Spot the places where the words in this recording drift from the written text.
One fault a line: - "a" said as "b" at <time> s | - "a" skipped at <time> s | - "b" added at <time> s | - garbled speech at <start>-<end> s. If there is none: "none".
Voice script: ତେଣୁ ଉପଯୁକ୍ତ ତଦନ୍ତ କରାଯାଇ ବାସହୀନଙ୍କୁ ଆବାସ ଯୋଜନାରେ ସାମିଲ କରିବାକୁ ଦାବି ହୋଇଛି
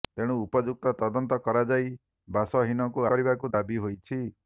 - "ଆବାସ ଯୋଜନାରେ ସାମିଲ" skipped at 3.1 s